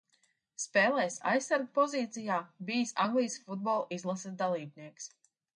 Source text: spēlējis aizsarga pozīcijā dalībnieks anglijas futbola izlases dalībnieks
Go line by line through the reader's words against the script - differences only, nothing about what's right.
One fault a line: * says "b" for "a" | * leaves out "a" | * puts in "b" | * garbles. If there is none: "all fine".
* says "bijis" for "dalībnieks"